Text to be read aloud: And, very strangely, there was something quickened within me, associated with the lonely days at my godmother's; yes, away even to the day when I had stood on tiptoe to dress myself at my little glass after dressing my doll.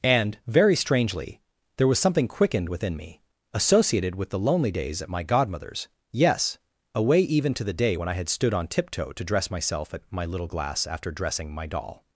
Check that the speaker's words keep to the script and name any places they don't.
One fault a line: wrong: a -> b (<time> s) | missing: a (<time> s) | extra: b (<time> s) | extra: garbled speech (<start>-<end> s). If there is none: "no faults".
no faults